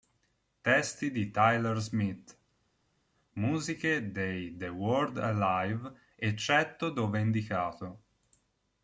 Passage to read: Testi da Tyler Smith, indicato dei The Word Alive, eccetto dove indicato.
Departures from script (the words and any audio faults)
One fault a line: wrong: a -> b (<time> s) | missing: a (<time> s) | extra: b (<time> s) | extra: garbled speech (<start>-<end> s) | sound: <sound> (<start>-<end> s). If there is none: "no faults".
wrong: da -> di (1.1 s)
wrong: indicato -> musiche (3.4 s)